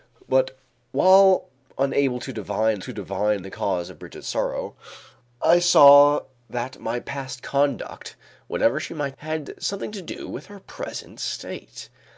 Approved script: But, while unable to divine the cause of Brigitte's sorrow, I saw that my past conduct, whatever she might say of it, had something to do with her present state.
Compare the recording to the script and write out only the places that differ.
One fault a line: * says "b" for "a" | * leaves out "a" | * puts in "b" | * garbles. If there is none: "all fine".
* puts in "to divine"
* leaves out "say of it"